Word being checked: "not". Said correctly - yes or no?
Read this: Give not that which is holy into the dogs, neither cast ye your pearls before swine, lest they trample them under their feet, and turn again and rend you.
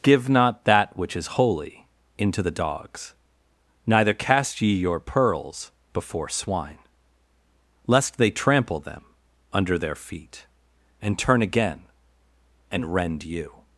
yes